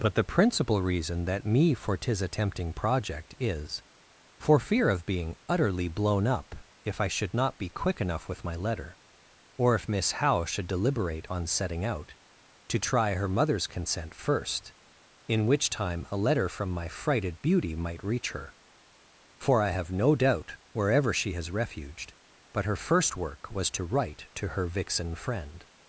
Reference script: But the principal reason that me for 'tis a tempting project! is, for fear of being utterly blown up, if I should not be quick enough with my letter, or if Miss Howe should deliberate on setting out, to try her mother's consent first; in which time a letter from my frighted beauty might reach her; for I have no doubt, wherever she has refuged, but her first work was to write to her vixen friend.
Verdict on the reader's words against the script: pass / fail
pass